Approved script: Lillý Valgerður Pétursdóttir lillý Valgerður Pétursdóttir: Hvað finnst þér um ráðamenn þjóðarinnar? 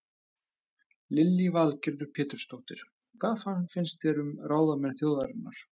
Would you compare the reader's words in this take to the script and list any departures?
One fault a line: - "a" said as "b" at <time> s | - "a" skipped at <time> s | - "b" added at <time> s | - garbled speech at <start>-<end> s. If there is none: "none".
- "lillý Valgerður Pétursdóttir" skipped at 2.9 s